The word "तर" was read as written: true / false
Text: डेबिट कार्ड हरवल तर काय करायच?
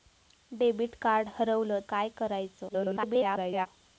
false